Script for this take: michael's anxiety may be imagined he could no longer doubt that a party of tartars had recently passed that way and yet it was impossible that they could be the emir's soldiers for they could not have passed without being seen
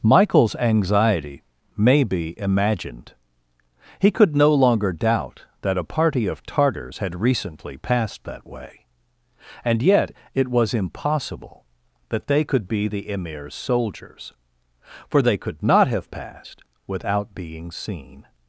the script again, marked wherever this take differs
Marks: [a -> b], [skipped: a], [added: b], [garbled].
michael's anxiety may be imagined he could no longer doubt that a party of tartars had recently passed that way and yet it was impossible that they could be the emir's soldiers for they could not have passed without being seen